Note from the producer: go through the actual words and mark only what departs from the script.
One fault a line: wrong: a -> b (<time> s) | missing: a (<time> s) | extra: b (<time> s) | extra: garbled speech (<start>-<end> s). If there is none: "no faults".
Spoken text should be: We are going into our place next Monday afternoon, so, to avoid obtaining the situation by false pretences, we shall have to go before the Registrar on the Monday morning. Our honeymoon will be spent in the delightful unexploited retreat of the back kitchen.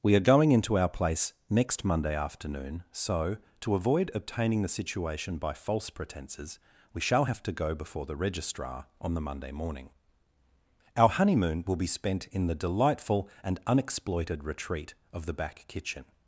extra: and (13.4 s)